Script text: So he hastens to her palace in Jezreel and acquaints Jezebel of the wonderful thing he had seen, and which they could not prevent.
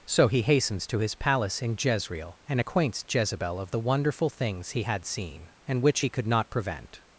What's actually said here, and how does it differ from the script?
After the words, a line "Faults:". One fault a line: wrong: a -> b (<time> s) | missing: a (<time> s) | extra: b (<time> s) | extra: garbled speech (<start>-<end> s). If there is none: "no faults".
So he hastens to his palace in Jezreel and acquaints Jezebel of the wonderful things he had seen, and which he could not prevent.
Faults:
wrong: her -> his (1.0 s)
wrong: thing -> things (4.3 s)
wrong: they -> he (6.0 s)